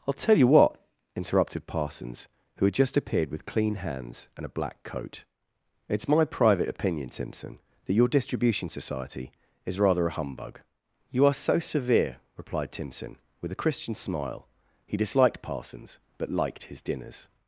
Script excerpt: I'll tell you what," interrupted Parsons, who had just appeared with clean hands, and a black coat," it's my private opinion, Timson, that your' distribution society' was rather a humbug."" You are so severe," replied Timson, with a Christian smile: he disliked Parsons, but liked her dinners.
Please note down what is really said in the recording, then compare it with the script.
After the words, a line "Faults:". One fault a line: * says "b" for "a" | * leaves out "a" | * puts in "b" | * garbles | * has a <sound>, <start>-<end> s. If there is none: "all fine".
I'll tell you what," interrupted Parsons, who had just appeared with clean hands, and a black coat," it's my private opinion, Timson, that your' distribution society' is rather a humbug."" You are so severe," replied Timson, with a Christian smile: he disliked Parsons, but liked his dinners.
Faults:
* says "is" for "was"
* says "his" for "her"